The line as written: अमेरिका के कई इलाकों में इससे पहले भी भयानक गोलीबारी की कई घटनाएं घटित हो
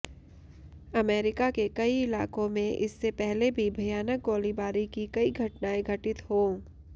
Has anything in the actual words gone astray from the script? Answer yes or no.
no